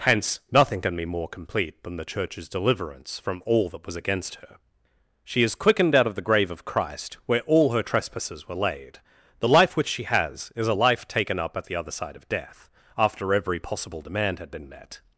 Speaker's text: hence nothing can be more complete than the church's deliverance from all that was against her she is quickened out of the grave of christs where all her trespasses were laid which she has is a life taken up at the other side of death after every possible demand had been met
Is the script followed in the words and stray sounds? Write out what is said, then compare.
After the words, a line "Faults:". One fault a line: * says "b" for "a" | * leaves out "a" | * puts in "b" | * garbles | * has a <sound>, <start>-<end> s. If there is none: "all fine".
hence nothing can be more complete than the church's deliverance from all that was against her she is quickened out of the grave of christ where all her trespasses were laid the life which she has is a life taken up at the other side of death after every possible demand had been met
Faults:
* says "christ" for "christs"
* puts in "the life"